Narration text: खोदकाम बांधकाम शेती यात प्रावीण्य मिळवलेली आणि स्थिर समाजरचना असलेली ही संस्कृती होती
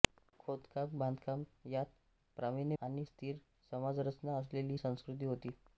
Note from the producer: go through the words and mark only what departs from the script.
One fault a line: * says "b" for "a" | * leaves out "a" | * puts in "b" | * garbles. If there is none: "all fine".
* leaves out "शेती"
* leaves out "मिळवलेली"
* leaves out "ही"